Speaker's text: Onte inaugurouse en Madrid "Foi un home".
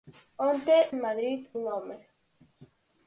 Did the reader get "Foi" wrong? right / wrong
wrong